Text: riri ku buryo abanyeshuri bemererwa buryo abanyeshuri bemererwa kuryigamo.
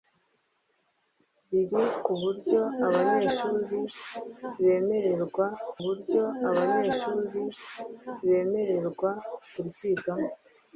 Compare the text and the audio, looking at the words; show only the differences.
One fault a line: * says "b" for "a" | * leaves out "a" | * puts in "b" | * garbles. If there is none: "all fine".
all fine